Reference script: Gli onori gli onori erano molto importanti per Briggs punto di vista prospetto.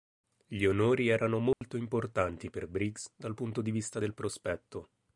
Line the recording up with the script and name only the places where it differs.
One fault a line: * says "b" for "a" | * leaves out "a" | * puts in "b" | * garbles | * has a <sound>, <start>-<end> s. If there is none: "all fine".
* leaves out "gli onori"
* has a dropout, 1.5-1.6 s
* puts in "dal"
* puts in "del"